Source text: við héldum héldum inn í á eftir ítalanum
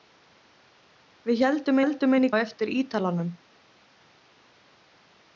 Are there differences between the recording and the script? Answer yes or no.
no